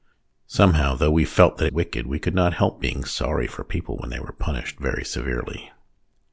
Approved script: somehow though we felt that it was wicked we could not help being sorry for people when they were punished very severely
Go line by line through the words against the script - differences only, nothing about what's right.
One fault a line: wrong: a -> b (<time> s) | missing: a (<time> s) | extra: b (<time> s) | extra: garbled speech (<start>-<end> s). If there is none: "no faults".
missing: it was (1.7 s)